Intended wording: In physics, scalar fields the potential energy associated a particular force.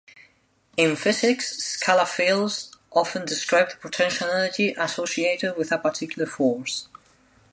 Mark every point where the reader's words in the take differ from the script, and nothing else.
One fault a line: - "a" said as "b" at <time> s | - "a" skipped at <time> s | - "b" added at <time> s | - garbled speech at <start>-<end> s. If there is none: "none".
- "often describe" added at 2.9 s
- "with" added at 5.5 s